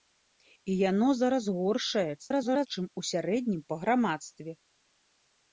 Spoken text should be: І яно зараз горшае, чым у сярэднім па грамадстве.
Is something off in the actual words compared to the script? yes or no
yes